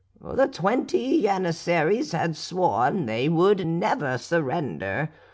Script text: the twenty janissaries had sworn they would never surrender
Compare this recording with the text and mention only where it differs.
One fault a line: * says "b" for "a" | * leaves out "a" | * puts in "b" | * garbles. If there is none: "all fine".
all fine